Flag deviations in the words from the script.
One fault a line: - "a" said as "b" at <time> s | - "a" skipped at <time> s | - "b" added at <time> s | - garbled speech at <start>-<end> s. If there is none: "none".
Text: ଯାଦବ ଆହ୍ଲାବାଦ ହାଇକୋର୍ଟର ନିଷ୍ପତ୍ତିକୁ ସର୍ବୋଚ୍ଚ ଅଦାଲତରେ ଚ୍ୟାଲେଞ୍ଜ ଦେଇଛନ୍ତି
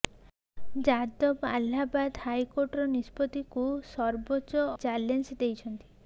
- "ଅଦାଲତରେ" skipped at 4.7 s